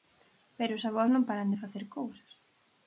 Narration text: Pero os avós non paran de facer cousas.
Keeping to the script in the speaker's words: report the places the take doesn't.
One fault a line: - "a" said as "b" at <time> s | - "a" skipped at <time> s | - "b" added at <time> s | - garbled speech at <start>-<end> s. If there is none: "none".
none